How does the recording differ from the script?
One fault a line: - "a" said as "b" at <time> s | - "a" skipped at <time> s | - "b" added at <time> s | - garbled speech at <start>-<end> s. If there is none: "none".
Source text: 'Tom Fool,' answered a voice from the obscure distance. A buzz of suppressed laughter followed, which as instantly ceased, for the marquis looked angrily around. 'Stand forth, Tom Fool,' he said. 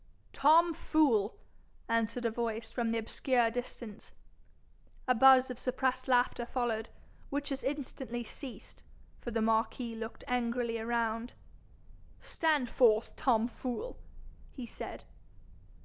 none